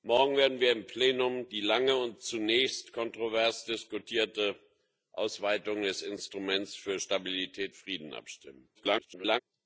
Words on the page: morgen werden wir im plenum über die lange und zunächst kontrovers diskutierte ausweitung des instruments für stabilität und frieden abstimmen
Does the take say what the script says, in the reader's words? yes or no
no